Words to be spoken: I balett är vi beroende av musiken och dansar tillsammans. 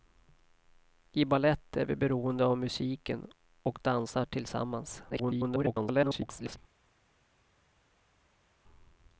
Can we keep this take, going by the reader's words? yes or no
no